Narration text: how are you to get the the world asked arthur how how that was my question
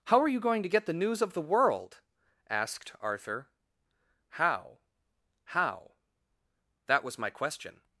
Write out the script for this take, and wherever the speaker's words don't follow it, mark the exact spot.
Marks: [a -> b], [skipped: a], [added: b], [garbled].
how are you [added: going] to get the [added: news of] the world asked arthur how how that was my question